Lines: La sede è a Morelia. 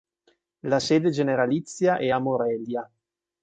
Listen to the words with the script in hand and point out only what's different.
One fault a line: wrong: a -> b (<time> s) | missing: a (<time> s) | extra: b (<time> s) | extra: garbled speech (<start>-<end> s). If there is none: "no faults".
extra: generalizia (1.1 s)